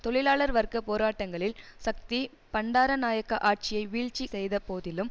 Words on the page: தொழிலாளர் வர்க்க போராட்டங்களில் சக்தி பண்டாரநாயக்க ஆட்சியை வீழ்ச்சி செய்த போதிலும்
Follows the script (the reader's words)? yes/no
yes